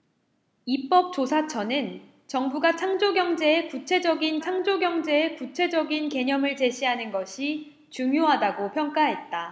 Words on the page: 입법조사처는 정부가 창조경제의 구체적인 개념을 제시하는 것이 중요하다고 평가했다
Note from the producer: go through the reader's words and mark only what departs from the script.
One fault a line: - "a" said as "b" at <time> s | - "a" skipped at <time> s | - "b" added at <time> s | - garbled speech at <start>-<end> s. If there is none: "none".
- "창조경제의 구체적인" added at 4.4 s